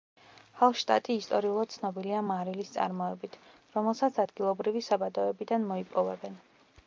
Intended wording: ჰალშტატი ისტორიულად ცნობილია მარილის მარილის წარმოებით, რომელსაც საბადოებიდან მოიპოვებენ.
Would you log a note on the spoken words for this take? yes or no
yes